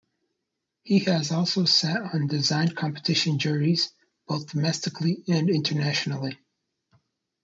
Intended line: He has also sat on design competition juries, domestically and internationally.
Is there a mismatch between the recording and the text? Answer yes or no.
yes